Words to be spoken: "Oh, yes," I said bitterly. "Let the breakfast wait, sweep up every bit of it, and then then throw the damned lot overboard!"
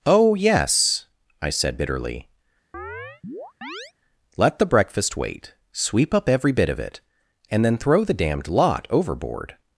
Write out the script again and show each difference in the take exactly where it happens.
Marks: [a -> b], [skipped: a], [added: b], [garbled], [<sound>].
"Oh, yes," I said bitterly. [chirp] "Let the breakfast wait, sweep up every bit of it, and then [skipped: then] throw the damned lot overboard!"